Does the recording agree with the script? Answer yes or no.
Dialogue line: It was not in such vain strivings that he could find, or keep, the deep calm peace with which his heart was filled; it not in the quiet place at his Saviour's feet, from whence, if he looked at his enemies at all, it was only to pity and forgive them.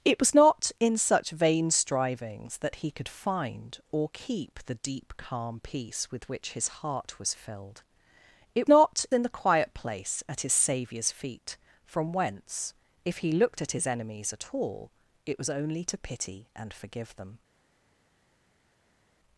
yes